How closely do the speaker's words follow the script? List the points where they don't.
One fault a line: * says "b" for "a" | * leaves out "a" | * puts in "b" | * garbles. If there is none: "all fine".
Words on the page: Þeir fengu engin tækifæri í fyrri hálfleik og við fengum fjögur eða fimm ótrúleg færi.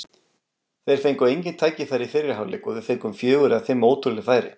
all fine